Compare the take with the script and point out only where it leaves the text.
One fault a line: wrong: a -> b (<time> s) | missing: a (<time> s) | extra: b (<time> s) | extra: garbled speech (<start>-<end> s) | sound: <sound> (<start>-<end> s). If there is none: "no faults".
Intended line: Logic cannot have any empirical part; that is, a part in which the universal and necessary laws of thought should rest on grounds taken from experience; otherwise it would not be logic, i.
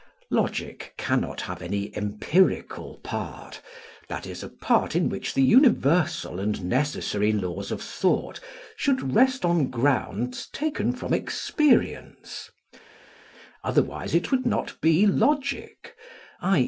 no faults